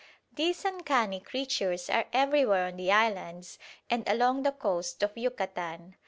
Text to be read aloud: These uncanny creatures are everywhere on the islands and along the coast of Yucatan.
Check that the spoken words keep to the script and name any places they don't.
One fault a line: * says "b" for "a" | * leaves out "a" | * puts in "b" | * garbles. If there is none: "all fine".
all fine